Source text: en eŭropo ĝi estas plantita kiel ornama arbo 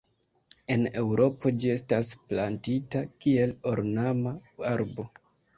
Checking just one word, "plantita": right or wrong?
right